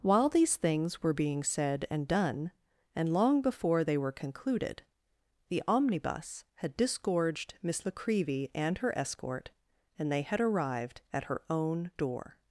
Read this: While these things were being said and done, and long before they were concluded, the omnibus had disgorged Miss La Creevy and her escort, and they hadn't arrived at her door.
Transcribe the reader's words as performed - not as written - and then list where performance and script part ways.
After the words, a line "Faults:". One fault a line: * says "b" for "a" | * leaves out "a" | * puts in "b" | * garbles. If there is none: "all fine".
While these things were being said and done, and long before they were concluded, the omnibus had disgorged Miss La Creevy and her escort, and they had arrived at her own door.
Faults:
* says "had" for "hadn't"
* puts in "own"